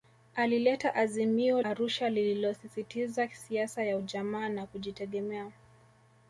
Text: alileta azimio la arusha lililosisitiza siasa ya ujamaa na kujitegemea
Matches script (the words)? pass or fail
fail